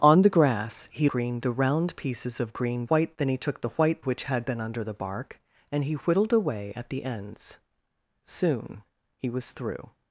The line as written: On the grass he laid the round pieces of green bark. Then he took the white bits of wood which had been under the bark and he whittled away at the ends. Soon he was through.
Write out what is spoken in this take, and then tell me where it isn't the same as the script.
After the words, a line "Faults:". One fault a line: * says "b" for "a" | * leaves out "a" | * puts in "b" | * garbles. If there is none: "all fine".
On the grass he green the round pieces of green white. Then he took the white which had been under the bark and he whittled away at the ends. Soon he was through.
Faults:
* says "green" for "laid"
* says "white" for "bark"
* leaves out "bits of wood"